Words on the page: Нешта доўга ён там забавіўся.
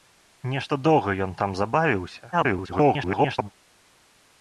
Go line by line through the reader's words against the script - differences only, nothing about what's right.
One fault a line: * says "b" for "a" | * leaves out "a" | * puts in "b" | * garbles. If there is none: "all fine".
* garbles